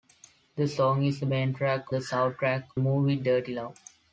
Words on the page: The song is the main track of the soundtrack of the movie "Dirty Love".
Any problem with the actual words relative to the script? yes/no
yes